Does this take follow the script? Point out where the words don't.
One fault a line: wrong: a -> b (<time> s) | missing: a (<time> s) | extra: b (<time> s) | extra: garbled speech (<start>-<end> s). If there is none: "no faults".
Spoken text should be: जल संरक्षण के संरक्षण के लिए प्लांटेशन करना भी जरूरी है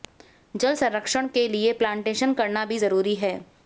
missing: संरक्षण के (1.5 s)